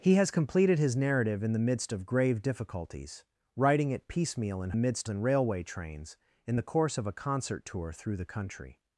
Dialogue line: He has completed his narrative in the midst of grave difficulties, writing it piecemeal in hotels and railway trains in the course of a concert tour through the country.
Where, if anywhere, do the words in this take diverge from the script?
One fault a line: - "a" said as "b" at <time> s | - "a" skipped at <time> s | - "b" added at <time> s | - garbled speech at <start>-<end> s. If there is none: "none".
- "hotels" said as "midst" at 4.8 s